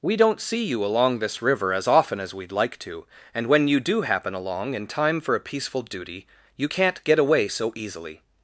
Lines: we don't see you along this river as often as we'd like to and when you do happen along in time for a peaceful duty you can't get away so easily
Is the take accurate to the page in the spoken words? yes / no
yes